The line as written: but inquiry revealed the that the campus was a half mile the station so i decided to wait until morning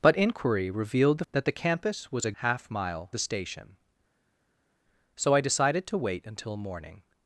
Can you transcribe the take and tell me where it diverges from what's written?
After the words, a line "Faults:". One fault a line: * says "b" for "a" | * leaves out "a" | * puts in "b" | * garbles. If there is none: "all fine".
but inquiry revealed the that the campus was a half mile the station so i decided to wait until morning
Faults:
all fine